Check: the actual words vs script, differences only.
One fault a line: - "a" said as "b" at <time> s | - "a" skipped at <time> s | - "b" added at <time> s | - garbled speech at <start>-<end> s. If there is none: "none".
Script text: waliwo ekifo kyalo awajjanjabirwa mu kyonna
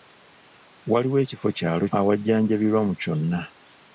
none